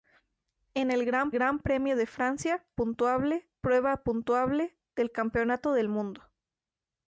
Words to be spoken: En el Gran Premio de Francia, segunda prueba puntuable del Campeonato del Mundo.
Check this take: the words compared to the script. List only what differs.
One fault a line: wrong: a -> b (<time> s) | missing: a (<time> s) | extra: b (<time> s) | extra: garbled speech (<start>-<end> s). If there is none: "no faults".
extra: Gran (1.3 s)
wrong: segunda -> puntuable (2.7 s)